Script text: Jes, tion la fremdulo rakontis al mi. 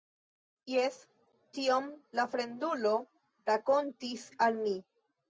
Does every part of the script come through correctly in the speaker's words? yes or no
yes